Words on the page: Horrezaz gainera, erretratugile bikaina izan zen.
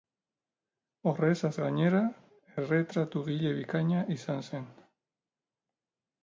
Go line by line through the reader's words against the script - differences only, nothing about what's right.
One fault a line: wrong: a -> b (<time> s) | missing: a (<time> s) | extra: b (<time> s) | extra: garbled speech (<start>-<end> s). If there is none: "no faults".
no faults